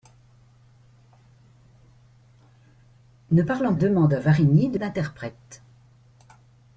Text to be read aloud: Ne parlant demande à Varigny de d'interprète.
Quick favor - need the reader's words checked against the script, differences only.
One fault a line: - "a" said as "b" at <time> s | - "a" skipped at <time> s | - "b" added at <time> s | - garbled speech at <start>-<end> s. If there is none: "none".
none